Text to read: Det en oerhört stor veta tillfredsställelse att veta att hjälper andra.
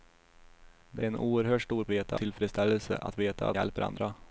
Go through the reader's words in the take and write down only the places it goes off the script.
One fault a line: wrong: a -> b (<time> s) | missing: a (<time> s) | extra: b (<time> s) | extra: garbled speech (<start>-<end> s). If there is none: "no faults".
no faults